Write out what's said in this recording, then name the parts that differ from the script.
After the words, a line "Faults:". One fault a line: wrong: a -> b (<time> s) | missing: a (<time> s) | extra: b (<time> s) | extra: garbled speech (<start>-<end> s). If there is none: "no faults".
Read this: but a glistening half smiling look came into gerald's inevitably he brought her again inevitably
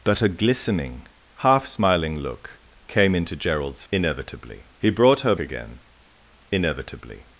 but a glistening half smiling look came into gerald's inevitably he brought her again inevitably
Faults:
no faults